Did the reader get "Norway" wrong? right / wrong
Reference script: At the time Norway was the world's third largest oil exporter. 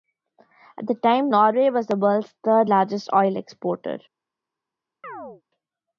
right